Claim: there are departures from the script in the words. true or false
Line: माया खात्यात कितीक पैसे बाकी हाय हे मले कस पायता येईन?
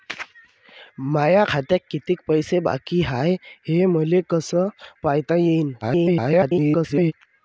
true